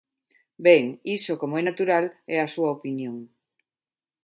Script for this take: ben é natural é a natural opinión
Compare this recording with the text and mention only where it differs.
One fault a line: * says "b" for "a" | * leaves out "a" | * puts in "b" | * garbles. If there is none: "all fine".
* puts in "iso como"
* says "súa" for "natural"